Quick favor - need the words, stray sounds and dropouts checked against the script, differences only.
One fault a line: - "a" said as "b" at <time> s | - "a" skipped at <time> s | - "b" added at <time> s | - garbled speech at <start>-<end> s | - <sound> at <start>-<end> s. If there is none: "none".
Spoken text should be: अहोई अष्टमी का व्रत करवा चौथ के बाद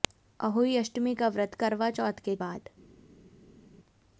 none